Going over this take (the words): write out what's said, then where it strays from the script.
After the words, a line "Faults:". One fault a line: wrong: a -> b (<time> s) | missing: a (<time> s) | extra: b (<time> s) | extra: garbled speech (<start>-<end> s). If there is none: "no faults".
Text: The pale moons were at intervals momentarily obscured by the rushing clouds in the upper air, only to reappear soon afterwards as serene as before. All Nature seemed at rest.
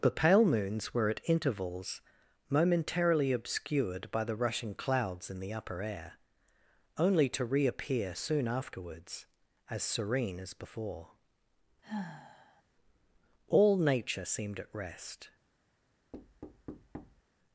The pale moons were at intervals momentarily obscured by the rushing clouds in the upper air, only to reappear soon afterwards as serene as before. All Nature seemed at rest.
Faults:
no faults